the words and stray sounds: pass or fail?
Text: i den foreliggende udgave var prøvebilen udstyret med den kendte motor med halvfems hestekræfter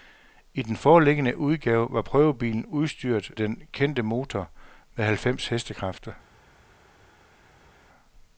fail